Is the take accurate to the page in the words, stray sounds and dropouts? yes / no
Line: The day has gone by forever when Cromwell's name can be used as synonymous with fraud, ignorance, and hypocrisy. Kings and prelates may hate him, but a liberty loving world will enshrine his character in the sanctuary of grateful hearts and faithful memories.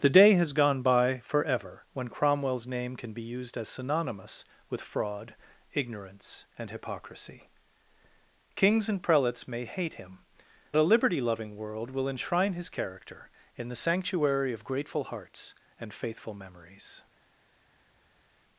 no